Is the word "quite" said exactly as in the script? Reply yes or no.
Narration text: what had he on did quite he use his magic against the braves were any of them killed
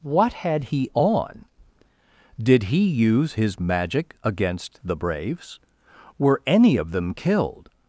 no